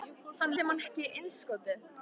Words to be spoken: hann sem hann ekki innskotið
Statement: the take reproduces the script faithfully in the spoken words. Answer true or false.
true